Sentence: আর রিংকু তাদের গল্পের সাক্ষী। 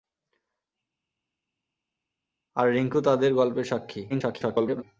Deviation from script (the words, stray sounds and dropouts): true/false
true